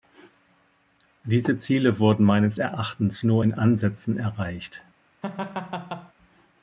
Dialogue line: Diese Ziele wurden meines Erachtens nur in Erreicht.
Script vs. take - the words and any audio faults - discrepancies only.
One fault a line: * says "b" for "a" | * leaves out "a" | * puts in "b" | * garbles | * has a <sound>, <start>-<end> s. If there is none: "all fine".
* puts in "Ansätzen"
* has a laugh, 5.2-6.1 s